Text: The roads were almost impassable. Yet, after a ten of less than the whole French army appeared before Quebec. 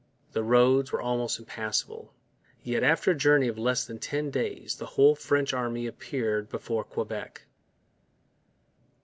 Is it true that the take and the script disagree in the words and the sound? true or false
true